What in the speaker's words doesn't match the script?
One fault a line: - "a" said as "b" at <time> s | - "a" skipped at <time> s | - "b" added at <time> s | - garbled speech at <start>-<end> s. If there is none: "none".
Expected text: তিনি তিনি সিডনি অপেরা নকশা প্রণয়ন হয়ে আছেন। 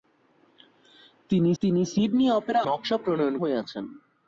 none